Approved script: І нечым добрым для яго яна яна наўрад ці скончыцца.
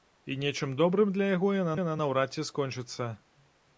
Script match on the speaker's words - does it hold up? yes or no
yes